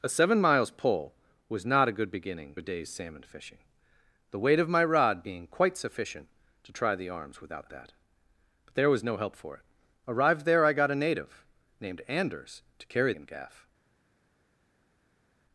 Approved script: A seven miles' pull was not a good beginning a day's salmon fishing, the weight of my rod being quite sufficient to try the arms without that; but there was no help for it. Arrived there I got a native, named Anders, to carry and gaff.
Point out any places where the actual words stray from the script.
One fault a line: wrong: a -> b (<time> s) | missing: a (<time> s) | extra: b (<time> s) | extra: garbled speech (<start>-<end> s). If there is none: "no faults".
no faults